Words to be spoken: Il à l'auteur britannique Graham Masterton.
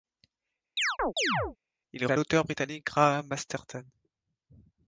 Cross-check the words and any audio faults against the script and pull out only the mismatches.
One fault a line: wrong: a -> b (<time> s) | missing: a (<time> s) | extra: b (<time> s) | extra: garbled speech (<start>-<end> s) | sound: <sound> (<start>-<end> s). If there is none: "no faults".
sound: chirp (0.8-1.6 s)